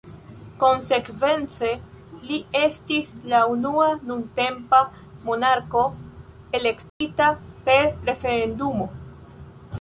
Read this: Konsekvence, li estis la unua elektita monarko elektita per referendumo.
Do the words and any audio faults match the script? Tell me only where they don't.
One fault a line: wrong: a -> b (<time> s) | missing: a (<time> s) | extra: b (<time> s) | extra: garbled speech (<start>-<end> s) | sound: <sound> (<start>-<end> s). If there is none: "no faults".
wrong: elektita -> nuntempa (4.1 s)
sound: dropout (6.9-7.0 s)